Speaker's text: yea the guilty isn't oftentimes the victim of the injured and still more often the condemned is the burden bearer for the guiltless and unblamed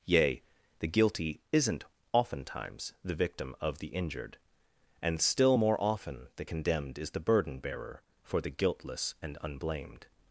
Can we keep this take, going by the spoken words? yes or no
yes